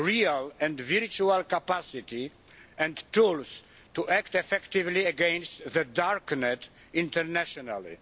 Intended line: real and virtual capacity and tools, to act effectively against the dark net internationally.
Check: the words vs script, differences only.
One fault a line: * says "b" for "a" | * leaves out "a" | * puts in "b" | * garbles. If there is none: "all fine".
all fine